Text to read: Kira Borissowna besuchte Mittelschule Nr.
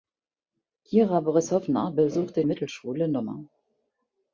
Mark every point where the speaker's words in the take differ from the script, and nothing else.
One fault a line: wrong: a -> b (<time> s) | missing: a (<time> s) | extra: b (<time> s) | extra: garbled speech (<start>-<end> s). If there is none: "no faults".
no faults